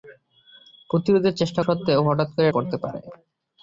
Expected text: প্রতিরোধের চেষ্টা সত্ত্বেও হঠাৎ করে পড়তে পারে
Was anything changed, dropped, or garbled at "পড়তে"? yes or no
no